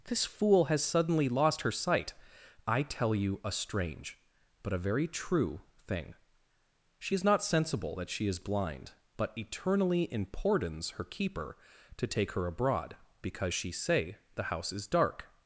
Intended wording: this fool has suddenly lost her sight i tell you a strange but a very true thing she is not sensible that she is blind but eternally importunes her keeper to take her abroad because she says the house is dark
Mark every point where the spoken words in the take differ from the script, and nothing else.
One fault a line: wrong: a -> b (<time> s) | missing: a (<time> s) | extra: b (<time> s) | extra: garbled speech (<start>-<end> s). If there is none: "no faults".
wrong: says -> say (13.7 s)